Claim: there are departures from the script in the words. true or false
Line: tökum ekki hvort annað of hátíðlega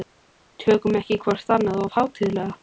false